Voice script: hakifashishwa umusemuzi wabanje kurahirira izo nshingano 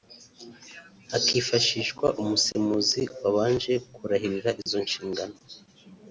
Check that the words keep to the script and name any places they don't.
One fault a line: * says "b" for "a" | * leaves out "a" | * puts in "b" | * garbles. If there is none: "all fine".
all fine